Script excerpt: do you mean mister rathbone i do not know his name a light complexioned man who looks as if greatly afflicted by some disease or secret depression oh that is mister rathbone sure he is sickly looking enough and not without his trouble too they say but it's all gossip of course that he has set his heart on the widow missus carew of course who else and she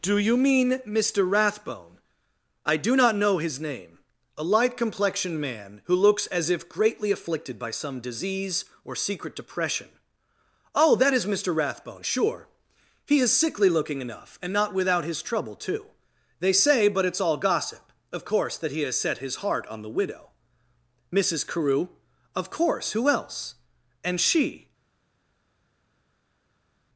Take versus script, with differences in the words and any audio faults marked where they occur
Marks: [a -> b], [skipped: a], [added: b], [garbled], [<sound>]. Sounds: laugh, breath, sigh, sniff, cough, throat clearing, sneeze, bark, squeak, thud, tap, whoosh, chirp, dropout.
do you mean mister rathbone i do not know his name a light complexioned man who looks as if greatly afflicted by some disease or secret depression oh that is mister rathbone sure he is sickly looking enough and not without his trouble too they say but it's all gossip of course that he has set his heart on the widow missus carew of course who else and she